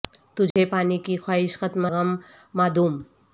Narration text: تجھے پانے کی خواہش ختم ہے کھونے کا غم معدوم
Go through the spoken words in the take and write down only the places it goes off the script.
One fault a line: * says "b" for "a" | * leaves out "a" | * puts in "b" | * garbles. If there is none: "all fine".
* leaves out "ہے کھونے کا"